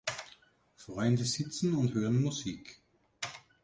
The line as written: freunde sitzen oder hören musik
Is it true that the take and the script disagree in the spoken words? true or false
true